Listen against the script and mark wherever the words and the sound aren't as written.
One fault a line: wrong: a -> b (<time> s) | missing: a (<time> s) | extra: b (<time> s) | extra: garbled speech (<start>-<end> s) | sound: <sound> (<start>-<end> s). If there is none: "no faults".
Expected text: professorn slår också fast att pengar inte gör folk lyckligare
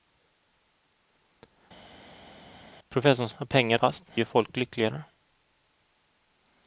missing: slår också fast (3.3 s)
wrong: inte -> fast (3.7 s)